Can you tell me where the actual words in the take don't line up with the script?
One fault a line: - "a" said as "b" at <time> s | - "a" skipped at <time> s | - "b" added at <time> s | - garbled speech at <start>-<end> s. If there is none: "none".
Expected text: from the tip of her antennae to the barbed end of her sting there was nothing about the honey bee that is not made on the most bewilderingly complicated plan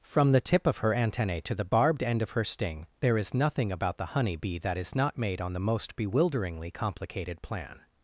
- "was" said as "is" at 3.2 s